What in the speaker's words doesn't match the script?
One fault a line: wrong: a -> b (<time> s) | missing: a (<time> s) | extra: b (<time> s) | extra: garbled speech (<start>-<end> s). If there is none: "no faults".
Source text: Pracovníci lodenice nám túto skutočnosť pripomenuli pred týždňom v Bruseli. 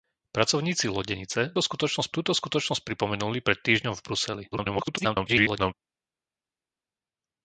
wrong: nám -> skutočnosť (1.6 s)
extra: garbled speech (4.5-5.7 s)